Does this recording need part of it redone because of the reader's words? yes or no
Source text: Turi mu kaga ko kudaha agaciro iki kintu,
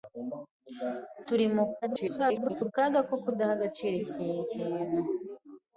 yes